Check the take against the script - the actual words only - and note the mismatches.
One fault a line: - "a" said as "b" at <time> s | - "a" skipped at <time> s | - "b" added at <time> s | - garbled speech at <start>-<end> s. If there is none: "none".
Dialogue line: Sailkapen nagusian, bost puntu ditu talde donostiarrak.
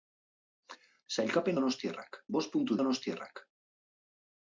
- "nagusian" said as "donostiarrak" at 1.6 s
- "ditu talde" skipped at 2.8 s